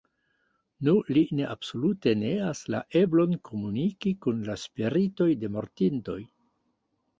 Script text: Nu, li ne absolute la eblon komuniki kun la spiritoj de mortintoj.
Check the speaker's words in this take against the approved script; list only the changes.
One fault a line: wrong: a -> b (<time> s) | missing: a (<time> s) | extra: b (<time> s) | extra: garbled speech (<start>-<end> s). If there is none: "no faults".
extra: neas (2.2 s)